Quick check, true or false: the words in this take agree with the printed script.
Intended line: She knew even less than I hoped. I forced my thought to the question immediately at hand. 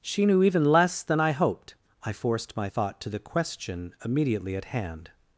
true